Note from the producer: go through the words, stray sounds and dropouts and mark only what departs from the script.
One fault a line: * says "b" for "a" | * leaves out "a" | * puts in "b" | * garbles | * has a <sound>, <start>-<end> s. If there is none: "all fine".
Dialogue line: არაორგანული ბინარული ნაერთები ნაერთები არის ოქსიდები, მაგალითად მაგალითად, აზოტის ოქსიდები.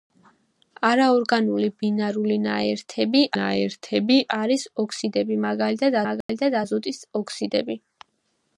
* has a dropout, 6.2-6.3 s